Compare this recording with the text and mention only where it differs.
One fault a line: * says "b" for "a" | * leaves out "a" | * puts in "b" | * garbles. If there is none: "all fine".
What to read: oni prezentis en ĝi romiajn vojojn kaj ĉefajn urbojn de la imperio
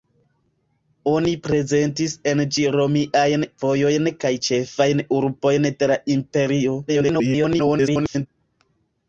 * garbles